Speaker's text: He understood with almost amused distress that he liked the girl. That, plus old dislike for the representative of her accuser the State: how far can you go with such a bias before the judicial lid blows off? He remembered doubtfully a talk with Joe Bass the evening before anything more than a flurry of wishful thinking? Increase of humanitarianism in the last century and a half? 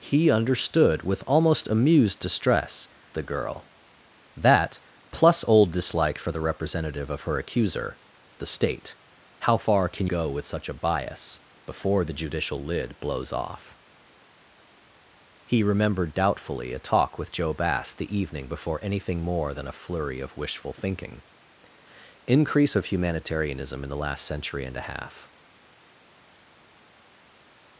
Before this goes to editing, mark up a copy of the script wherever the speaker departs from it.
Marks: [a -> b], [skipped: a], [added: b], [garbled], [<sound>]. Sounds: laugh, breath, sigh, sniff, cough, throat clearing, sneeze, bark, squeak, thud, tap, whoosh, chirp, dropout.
He understood with almost amused distress [skipped: that he liked] the girl. That, plus old dislike for the representative of her accuser the State: how far can [skipped: you] go with such a bias before the judicial lid blows off? He remembered doubtfully a talk with Joe Bass the evening before anything more than a flurry of wishful thinking? Increase of humanitarianism in the last century and a half?